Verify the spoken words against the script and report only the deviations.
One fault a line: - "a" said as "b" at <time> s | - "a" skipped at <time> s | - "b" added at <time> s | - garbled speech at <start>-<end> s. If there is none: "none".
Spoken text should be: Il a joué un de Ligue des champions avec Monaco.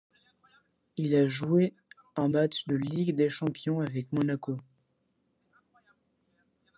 - "match" added at 2.3 s